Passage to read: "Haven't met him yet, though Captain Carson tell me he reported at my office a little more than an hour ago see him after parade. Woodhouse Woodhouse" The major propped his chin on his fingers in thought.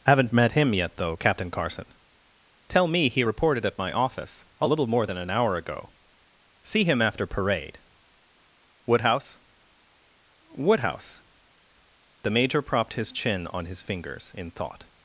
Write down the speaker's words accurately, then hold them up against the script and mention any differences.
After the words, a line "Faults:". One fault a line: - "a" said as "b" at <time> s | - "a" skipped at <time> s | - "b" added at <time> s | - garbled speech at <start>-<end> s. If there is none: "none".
"Haven't met him yet, though Captain Carson tell me he reported at my office a little more than an hour ago see him after parade. Woodhouse Woodhouse" The major propped his chin on his fingers in thought.
Faults:
none